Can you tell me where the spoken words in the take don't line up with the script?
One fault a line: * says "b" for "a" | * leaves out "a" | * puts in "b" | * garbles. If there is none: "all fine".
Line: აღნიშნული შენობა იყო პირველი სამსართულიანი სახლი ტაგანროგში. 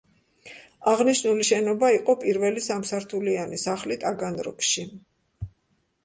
all fine